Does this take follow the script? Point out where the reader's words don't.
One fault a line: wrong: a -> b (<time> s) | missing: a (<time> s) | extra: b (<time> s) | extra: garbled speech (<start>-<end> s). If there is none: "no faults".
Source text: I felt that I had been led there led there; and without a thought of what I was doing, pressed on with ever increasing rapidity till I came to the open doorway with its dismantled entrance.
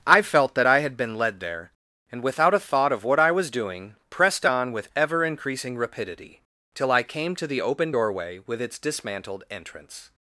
missing: led there (1.7 s)